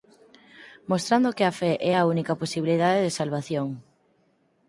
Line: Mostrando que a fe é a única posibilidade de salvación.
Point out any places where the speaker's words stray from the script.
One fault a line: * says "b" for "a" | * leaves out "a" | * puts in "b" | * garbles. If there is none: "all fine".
all fine